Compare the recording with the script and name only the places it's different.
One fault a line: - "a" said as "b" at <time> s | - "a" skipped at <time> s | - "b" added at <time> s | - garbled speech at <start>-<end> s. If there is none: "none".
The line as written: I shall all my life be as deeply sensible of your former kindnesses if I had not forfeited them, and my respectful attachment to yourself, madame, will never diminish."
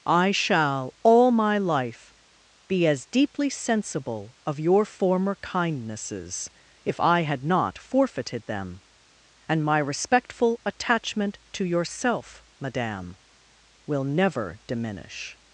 none